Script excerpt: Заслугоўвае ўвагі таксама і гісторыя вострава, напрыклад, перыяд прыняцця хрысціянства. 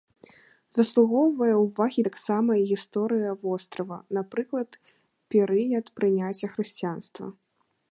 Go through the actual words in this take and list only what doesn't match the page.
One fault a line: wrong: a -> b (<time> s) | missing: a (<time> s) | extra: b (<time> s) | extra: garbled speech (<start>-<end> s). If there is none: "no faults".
no faults